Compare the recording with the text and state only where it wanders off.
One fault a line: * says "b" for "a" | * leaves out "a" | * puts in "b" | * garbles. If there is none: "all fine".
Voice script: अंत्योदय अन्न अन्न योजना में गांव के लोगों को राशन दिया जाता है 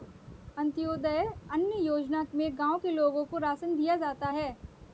* leaves out "अन्न"